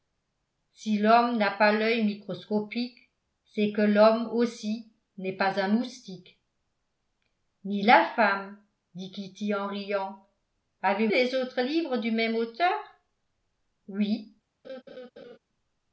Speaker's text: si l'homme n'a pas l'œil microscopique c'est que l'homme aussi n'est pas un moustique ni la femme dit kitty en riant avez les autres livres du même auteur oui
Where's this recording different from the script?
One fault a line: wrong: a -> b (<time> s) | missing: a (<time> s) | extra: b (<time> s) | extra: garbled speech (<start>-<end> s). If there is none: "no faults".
no faults